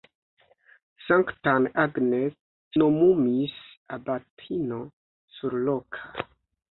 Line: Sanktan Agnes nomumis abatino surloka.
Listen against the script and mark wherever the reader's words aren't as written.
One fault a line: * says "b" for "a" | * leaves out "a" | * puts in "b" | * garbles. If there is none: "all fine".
all fine